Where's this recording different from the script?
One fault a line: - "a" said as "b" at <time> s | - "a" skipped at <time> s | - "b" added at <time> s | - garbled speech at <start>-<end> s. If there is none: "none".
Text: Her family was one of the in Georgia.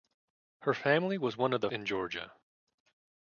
none